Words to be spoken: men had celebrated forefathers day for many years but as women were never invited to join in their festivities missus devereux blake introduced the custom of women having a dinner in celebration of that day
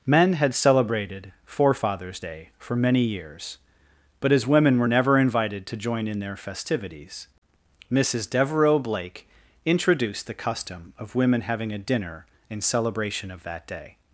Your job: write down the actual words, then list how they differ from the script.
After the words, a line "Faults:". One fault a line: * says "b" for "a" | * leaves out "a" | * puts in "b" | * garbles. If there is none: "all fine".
men had celebrated forefathers day for many years but as women were never invited to join in their festivities missus devereux blake introduced the custom of women having a dinner in celebration of that day
Faults:
all fine